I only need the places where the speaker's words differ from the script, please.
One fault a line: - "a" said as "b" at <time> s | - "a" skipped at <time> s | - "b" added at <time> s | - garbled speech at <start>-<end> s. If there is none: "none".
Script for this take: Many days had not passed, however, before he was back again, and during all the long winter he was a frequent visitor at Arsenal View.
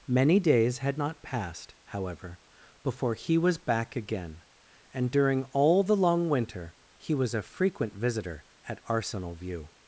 none